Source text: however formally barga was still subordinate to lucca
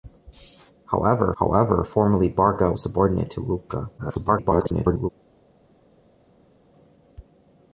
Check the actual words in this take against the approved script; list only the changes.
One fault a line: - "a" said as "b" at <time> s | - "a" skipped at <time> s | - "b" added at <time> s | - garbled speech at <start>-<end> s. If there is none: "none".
- "however" added at 1.4 s
- "was still" skipped at 2.7 s
- garbled speech at 4.0-5.1 s